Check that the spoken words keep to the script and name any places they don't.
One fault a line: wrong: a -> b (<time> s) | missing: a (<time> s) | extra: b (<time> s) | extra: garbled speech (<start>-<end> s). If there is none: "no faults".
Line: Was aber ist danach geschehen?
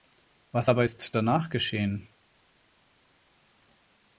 no faults